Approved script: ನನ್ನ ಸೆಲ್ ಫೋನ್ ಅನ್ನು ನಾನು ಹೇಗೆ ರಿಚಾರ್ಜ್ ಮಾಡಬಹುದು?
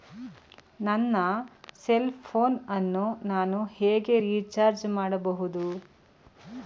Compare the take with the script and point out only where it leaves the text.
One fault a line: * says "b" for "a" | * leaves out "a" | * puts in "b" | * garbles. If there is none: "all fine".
all fine